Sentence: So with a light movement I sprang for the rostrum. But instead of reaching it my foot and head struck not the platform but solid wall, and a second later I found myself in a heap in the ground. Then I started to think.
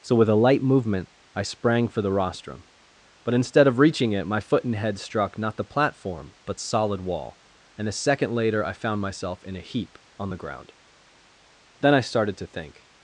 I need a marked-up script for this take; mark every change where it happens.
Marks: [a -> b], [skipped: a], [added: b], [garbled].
So with a light movement I sprang for the rostrum. But instead of reaching it my foot and head struck not the platform but solid wall, and a second later I found myself in a heap [in -> on] the ground. Then I started to think.